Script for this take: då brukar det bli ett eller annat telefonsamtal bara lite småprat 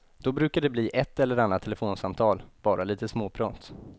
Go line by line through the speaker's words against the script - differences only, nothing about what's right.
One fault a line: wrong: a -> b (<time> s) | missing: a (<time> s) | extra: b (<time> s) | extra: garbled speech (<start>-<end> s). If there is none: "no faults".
no faults